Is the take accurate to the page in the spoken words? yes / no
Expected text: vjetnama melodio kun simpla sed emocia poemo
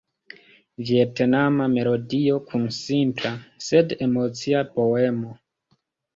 yes